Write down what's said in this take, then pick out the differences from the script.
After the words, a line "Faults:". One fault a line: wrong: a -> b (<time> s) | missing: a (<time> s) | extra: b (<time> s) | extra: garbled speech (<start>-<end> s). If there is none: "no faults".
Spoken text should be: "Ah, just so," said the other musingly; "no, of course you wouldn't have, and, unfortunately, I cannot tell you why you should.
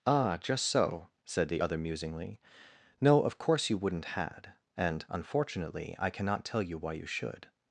"Ah, just so," said the other musingly; "no, of course you wouldn't had, and, unfortunately, I cannot tell you why you should.
Faults:
wrong: have -> had (4.0 s)